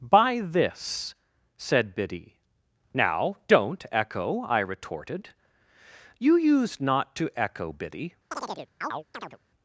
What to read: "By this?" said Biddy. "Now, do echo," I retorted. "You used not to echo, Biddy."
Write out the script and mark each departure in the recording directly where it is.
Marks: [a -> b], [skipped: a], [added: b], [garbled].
"By this?" said Biddy. "Now, [do -> don't] echo," I retorted. "You used not to echo, Biddy."